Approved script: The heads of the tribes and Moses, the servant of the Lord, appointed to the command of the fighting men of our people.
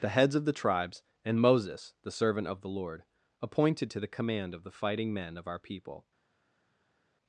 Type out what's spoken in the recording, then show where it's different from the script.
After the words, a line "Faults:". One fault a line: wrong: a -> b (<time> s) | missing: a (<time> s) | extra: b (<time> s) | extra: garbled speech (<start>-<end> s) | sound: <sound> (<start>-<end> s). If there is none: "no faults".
The heads of the tribes and Moses, the servant of the Lord, appointed to the command of the fighting men of our people.
Faults:
no faults